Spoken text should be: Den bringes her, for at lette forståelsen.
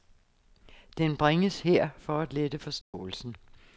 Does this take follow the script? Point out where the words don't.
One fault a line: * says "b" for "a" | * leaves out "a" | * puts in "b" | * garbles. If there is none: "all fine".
all fine